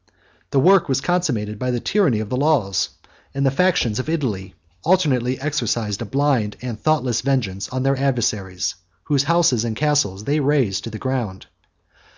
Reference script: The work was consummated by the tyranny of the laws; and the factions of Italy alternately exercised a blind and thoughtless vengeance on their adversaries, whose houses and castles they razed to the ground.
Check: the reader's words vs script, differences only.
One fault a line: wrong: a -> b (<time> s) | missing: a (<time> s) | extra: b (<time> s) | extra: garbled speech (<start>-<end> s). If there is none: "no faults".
no faults